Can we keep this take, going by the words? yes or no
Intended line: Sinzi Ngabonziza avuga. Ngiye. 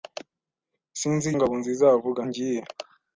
yes